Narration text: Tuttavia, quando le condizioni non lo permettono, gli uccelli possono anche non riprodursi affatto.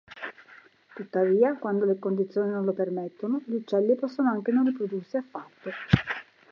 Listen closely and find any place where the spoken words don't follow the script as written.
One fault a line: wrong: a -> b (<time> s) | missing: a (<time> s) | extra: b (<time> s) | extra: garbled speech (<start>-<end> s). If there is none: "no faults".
no faults